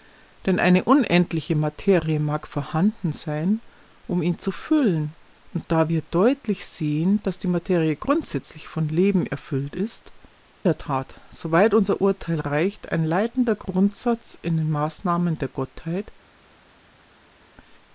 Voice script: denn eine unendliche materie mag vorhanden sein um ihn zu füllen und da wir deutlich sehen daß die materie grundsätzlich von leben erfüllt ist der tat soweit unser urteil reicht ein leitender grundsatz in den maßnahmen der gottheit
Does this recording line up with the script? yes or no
yes